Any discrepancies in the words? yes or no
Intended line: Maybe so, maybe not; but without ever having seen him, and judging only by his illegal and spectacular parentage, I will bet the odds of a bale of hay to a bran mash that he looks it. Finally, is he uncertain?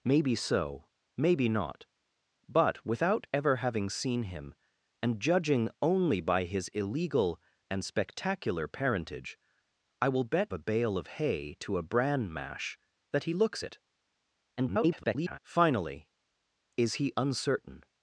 yes